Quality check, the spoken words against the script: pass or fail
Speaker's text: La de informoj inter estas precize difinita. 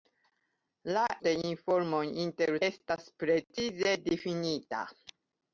pass